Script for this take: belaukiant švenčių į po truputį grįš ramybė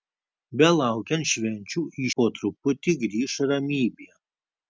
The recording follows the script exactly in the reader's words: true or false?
true